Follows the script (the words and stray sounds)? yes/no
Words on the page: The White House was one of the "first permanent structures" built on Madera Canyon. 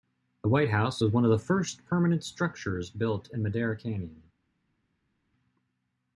no